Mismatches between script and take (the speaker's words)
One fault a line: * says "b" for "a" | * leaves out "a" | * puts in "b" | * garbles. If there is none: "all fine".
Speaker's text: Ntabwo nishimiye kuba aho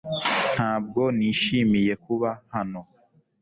* says "hano" for "aho"